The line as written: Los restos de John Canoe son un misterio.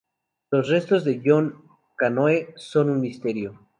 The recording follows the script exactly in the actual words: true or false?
true